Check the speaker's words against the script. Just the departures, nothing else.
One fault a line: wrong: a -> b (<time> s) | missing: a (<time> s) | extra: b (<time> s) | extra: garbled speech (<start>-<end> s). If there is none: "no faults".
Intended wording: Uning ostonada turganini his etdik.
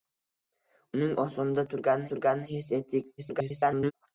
extra: turganini (2.1 s)
extra: garbled speech (3.2-3.9 s)